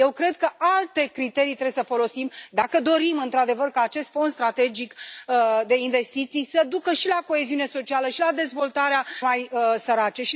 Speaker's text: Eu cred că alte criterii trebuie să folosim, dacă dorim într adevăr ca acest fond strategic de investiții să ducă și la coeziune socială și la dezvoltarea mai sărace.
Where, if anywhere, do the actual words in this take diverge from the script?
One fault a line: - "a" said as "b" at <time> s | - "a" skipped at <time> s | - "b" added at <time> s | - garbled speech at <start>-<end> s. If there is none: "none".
none